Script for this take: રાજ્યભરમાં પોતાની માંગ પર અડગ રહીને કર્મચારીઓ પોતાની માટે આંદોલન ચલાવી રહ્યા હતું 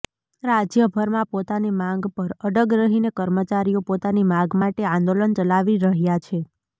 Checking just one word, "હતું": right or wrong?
wrong